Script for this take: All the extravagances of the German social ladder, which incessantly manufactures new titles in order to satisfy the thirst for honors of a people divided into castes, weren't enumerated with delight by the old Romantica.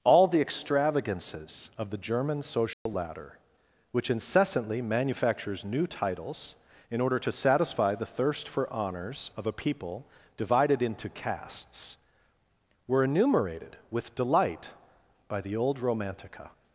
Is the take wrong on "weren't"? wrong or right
wrong